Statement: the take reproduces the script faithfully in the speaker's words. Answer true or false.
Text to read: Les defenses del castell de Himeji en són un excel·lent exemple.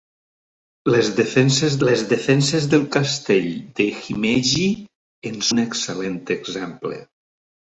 false